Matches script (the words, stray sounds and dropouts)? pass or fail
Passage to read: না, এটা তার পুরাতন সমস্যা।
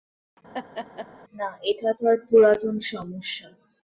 fail